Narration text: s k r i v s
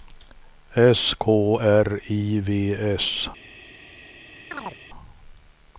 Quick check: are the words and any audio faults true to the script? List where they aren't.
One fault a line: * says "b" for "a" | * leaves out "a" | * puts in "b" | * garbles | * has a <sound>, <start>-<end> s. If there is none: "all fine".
* has a chirp, 4.5-4.8 s